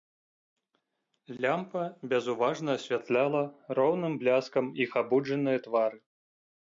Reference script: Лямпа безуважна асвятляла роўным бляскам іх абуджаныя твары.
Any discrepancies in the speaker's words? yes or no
no